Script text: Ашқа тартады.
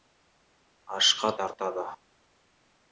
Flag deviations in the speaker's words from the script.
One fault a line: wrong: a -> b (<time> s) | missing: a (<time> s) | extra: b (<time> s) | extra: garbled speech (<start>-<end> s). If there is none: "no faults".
no faults